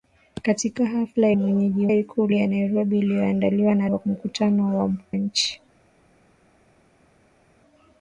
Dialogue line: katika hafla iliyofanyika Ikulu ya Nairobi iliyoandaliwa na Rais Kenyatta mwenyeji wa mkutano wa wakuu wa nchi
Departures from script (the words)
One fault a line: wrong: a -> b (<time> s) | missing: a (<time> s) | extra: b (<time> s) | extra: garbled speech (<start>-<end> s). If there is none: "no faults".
wrong: iliyofanyika -> mwenyeji (1.3 s)
missing: Rais Kenyatta mwenyeji (3.9 s)
missing: wa wakuu wa (4.9 s)